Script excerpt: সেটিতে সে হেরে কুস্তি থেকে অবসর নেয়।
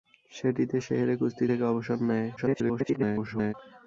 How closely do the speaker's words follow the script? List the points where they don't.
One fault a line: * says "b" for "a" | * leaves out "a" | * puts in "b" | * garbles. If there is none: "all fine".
* garbles